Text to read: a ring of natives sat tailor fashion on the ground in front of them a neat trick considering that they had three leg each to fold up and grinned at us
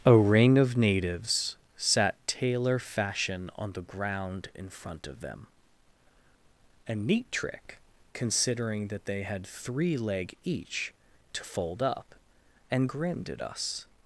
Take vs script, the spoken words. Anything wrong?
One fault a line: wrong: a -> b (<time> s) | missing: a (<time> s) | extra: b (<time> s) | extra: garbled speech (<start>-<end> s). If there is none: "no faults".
no faults